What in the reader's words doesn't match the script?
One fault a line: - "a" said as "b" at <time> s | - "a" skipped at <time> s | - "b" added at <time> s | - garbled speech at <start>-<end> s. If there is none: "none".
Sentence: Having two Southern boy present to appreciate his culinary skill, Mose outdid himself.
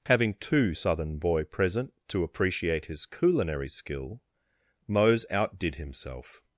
none